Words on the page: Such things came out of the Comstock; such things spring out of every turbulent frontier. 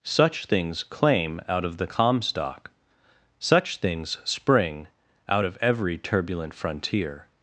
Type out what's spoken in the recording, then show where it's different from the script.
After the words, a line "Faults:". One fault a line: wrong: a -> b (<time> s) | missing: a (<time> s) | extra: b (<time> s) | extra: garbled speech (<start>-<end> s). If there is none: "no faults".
Such things claim out of the Comstock; such things spring out of every turbulent frontier.
Faults:
wrong: came -> claim (0.8 s)